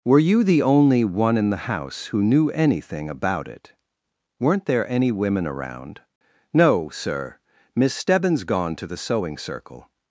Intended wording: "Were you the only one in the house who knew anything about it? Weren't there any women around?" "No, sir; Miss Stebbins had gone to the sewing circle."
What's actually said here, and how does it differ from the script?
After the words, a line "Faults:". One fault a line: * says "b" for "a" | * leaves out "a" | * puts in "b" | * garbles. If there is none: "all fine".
"Were you the only one in the house who knew anything about it? Weren't there any women around?" "No, sir; Miss Stebbins gone to the sewing circle."
Faults:
* leaves out "had"